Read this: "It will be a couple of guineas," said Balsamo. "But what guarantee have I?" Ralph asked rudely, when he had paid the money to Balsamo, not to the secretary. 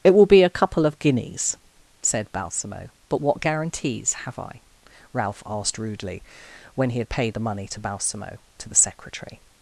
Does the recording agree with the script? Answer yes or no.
no